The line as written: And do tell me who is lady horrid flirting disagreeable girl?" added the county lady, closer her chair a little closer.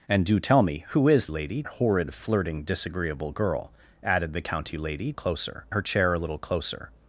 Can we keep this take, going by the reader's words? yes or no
yes